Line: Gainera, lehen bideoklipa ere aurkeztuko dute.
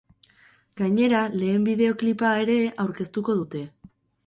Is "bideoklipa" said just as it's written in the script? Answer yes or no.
yes